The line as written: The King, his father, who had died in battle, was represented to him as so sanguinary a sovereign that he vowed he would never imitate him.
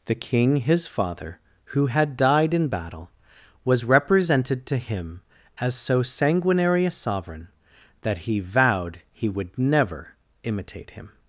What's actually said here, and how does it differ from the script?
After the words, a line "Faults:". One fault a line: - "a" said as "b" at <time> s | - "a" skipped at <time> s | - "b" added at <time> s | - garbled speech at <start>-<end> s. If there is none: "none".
The King, his father, who had died in battle, was represented to him as so sanguinary a sovereign that he vowed he would never imitate him.
Faults:
none